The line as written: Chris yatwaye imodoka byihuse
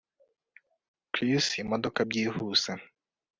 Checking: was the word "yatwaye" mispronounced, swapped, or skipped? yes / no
yes